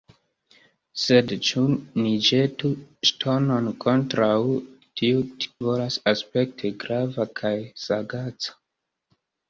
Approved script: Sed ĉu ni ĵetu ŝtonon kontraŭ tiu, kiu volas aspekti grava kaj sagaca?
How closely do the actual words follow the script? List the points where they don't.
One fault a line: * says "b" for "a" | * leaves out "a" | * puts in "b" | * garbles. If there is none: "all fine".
* leaves out "kiu"